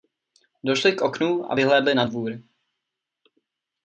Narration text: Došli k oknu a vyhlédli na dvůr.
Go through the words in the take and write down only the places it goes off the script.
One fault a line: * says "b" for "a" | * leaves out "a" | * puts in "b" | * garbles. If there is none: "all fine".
all fine